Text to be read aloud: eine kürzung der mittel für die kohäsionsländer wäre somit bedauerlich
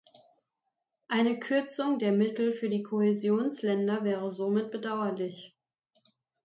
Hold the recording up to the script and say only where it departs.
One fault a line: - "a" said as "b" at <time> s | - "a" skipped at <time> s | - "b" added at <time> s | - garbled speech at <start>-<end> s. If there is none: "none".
none